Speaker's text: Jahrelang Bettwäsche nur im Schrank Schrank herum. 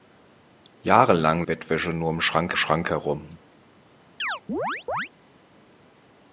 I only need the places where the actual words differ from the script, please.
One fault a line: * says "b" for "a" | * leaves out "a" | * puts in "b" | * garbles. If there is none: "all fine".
all fine